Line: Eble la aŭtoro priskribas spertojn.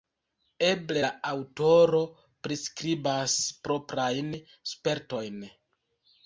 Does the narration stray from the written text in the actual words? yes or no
yes